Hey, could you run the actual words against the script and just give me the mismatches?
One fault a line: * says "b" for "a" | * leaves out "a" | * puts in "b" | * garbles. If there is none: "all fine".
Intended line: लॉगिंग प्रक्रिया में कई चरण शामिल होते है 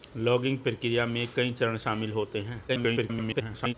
* garbles